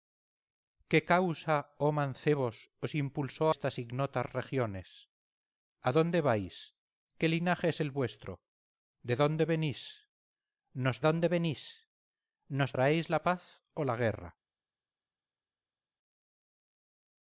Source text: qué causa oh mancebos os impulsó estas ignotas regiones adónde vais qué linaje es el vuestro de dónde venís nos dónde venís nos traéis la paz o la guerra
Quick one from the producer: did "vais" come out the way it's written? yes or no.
yes